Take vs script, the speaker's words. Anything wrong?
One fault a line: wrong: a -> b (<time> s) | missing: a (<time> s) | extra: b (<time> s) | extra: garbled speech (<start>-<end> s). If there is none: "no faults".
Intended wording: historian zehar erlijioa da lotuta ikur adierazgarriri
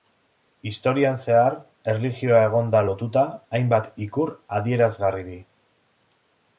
extra: egon (2.5 s)
extra: hainbat (3.6 s)